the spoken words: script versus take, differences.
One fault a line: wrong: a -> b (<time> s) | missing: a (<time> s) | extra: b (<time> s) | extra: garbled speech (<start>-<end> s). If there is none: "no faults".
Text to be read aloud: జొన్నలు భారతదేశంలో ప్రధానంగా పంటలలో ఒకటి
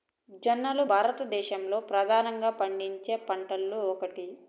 extra: పండించే (2.6 s)